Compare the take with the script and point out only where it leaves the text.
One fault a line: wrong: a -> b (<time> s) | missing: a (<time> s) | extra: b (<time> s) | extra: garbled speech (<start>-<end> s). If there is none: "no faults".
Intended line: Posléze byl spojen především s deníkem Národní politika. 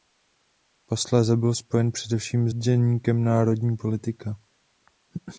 missing: s (2.5 s)